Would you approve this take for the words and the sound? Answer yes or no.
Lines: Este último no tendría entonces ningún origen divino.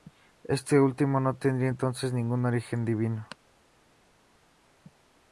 yes